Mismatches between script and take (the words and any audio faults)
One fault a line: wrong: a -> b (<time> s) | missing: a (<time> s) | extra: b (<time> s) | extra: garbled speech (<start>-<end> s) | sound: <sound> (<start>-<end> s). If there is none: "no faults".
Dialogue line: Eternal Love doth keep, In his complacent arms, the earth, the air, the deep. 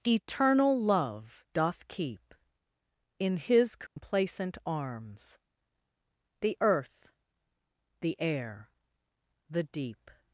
sound: dropout (3.9-4.0 s)